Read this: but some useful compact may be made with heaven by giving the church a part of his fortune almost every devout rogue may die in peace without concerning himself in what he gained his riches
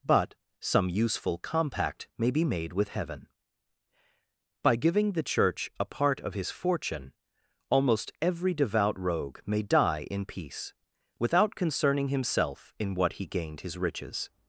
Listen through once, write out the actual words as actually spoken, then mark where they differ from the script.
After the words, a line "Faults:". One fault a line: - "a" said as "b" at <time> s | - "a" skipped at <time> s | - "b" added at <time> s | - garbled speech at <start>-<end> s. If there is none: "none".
but some useful compact may be made with heaven by giving the church a part of his fortune almost every devout rogue may die in peace without concerning himself in what he gained his riches
Faults:
none